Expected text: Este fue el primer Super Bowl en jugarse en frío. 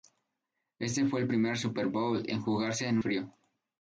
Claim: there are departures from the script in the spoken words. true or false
false